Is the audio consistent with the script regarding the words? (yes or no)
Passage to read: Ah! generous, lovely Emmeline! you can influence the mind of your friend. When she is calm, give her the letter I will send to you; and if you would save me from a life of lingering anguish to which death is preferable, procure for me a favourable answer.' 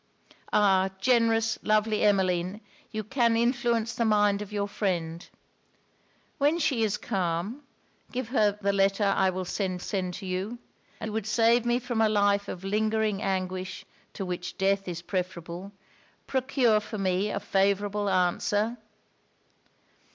no